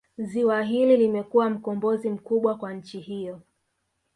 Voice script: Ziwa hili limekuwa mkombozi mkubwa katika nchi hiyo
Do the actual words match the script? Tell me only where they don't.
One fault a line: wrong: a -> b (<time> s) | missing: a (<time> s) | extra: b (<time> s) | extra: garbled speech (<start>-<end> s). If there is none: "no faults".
wrong: katika -> kwa (2.6 s)